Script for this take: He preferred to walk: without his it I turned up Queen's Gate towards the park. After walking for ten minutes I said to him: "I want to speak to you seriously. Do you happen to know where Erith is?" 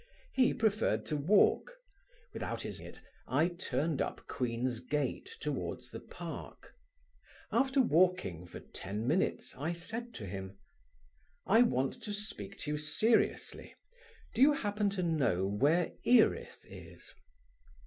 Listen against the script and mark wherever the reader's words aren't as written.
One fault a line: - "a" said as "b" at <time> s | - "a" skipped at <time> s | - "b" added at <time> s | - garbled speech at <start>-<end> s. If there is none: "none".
none